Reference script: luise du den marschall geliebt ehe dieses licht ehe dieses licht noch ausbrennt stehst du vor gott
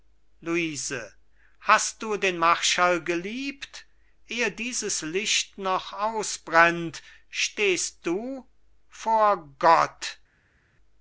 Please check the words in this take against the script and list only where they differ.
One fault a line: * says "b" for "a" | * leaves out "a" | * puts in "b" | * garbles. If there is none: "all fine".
* puts in "hast"
* leaves out "ehe dieses licht"